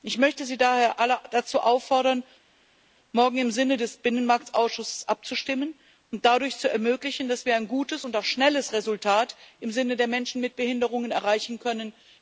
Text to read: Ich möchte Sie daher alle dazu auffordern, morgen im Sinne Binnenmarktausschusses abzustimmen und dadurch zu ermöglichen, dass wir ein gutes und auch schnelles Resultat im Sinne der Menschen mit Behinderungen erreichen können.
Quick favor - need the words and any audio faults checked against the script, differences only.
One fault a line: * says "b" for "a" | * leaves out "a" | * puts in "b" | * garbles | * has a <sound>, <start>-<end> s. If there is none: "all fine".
* puts in "des"